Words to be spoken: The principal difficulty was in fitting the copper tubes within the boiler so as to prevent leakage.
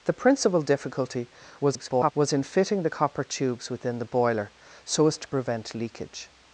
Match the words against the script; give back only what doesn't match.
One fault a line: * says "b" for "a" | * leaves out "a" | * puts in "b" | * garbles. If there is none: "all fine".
* garbles